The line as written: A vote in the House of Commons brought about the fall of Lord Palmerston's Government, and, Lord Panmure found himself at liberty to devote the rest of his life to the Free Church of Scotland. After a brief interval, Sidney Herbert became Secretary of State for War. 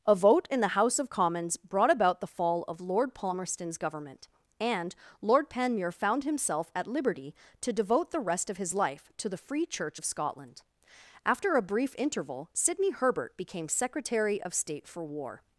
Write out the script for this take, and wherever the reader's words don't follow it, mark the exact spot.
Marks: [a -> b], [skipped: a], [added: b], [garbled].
A vote in the House of Commons brought about the fall of Lord Palmerston's Government, and, Lord Panmure found himself at liberty to devote the rest of his life to the Free Church of Scotland. After a brief interval, Sidney Herbert became Secretary of State for War.